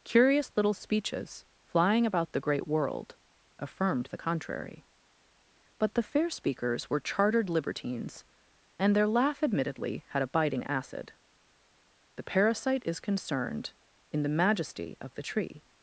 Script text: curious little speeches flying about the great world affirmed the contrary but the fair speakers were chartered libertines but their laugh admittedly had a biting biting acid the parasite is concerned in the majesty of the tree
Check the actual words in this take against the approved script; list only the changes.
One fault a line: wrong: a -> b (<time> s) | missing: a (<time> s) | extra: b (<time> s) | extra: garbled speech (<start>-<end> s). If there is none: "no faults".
wrong: but -> and (8.8 s)
missing: biting (10.6 s)